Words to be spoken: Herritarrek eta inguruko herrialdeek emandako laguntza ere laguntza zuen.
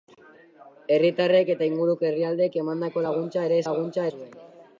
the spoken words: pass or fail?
pass